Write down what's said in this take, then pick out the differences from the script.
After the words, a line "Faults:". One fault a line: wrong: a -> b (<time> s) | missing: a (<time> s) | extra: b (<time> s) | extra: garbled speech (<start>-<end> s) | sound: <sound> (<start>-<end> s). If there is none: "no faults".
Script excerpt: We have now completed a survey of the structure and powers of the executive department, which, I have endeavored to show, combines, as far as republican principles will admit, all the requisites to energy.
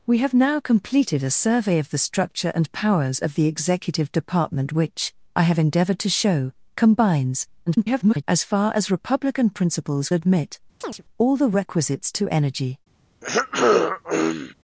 We have now completed a survey of the structure and powers of the executive department, which, I have endeavored to show, combines, [garbled] as far as republican principles admit, all the requisites to energy.
Faults:
extra: garbled speech (7.7-8.2 s)
missing: will (10.1 s)
sound: chirp (10.8-11.0 s)
sound: throat clearing (13.2-14.5 s)